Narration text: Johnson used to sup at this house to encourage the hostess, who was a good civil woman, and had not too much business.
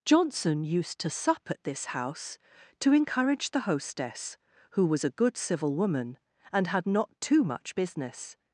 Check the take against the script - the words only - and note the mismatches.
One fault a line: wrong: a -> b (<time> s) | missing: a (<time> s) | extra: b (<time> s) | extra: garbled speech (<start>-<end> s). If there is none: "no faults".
no faults